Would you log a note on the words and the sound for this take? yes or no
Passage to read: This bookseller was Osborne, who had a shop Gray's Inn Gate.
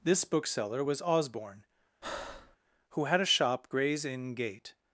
yes